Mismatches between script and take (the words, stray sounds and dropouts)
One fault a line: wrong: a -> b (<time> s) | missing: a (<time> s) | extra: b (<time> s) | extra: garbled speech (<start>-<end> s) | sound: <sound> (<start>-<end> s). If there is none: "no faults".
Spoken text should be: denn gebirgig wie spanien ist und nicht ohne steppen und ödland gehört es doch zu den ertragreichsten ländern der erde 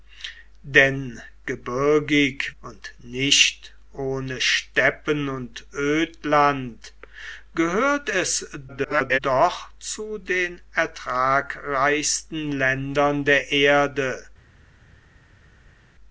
missing: wie spanien ist (2.5 s)
extra: garbled speech (8.7-9.2 s)